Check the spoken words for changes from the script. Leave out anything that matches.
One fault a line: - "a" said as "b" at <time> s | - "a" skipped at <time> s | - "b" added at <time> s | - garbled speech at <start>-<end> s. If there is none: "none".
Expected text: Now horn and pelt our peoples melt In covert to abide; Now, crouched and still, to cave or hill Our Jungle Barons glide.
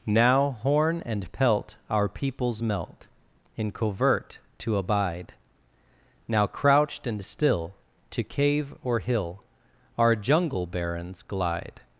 none